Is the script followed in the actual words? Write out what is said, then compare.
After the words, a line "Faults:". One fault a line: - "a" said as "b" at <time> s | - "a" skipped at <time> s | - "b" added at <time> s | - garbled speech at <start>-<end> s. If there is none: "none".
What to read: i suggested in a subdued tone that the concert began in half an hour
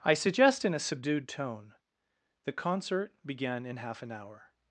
i suggest in a subdued tone the concert began in half an hour
Faults:
- "suggested" said as "suggest" at 0.1 s
- "that" skipped at 1.7 s